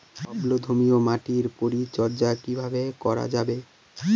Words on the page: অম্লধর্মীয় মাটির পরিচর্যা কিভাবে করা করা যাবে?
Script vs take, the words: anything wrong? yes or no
yes